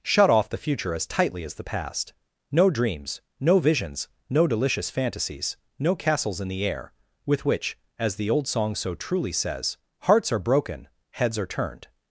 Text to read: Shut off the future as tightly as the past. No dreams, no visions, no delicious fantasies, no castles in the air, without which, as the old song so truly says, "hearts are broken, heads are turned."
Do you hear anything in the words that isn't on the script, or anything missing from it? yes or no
yes